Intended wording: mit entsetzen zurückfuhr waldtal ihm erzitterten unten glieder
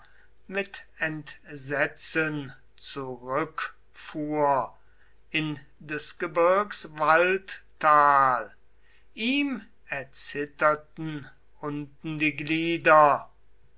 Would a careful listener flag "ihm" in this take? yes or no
no